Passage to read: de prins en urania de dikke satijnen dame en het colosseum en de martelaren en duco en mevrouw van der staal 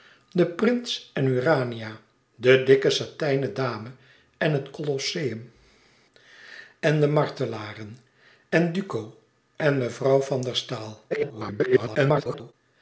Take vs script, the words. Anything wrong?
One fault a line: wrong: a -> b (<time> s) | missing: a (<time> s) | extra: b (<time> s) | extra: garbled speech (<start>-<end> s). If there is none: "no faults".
extra: garbled speech (11.1-12.5 s)